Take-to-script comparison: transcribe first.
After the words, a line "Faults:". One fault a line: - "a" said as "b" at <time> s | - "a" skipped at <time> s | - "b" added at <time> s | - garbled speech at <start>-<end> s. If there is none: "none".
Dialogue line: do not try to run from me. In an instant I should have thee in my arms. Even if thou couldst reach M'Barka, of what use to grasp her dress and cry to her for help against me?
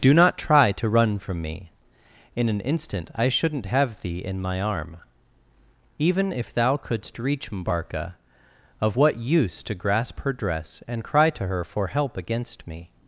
do not try to run from me. In an instant I shouldn't have thee in my arm. Even if thou couldst reach M'Barka, of what use to grasp her dress and cry to her for help against me?
Faults:
- "should" said as "shouldn't" at 3.3 s
- "arms" said as "arm" at 4.6 s